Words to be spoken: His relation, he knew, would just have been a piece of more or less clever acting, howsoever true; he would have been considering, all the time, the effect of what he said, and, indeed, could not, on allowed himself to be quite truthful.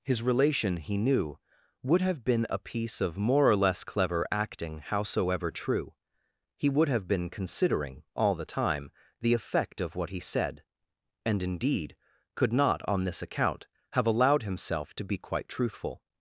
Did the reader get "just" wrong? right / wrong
wrong